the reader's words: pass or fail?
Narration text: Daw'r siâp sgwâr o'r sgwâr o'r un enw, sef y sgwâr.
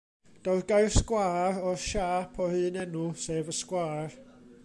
fail